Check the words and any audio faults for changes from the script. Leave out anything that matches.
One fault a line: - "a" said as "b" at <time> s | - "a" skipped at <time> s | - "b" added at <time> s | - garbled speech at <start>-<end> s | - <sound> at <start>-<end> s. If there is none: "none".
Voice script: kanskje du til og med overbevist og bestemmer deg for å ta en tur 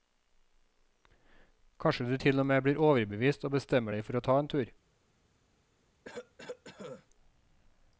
- "blir" added at 2.6 s
- cough at 6.0-7.1 s